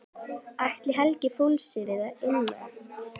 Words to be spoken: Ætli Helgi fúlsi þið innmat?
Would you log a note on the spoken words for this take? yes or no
yes